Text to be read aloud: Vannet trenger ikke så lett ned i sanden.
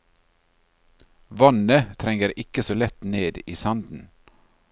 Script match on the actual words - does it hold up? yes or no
yes